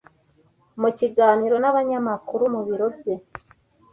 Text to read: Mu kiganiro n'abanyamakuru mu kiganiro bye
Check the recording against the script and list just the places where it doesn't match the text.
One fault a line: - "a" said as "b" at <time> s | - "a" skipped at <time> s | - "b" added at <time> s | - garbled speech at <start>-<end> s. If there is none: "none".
- "kiganiro" said as "biro" at 2.7 s